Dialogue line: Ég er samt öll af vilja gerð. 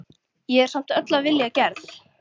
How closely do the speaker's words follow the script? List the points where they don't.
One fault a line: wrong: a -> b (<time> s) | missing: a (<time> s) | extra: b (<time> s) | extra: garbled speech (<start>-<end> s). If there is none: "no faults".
no faults